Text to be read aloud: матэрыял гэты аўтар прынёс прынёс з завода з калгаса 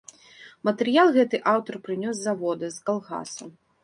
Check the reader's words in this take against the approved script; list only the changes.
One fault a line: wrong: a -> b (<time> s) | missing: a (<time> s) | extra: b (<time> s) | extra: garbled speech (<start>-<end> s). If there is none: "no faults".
missing: прынёс (2.1 s)